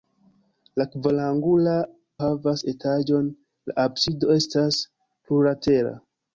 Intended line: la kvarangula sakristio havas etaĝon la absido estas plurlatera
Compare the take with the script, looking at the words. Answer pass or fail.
fail